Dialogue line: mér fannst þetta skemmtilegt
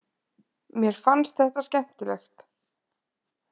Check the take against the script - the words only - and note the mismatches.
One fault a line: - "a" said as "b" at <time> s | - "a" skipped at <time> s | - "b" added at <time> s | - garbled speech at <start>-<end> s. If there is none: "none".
none